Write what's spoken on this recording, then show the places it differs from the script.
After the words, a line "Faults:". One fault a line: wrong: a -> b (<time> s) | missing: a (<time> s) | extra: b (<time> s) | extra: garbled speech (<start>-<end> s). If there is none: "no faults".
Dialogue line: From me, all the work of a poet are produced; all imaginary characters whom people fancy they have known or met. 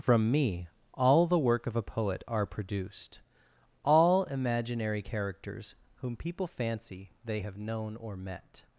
From me, all the work of a poet are produced; all imaginary characters whom people fancy they have known or met.
Faults:
no faults